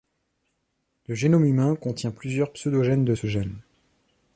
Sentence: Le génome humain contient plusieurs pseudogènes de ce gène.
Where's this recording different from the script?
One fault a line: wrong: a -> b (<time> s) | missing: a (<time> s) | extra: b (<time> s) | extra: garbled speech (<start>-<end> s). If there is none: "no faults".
no faults